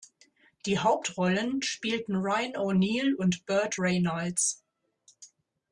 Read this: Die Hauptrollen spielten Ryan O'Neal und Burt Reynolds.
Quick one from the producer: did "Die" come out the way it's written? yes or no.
yes